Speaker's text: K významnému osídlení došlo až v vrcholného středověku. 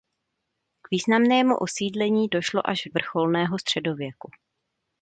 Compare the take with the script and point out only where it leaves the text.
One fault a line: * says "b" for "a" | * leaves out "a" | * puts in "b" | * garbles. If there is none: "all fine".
all fine